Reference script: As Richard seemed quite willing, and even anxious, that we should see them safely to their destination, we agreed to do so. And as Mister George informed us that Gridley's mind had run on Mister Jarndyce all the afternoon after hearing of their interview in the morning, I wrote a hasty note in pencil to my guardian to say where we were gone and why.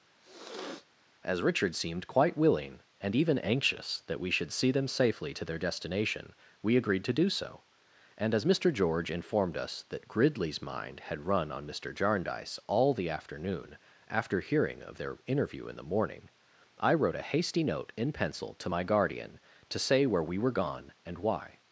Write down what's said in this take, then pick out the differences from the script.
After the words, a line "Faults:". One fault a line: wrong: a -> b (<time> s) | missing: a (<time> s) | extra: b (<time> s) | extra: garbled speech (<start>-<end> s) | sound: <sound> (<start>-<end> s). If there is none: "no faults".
As Richard seemed quite willing, and even anxious, that we should see them safely to their destination, we agreed to do so. And as Mister George informed us that Gridley's mind had run on Mister Jarndyce all the afternoon after hearing of their interview in the morning, I wrote a hasty note in pencil to my guardian to say where we were gone and why.
Faults:
sound: sniff (0.2-0.9 s)